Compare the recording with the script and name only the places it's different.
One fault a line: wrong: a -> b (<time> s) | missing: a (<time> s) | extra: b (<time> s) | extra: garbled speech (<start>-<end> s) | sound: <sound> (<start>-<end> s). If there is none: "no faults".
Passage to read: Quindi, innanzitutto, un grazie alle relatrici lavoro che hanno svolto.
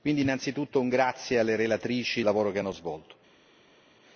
no faults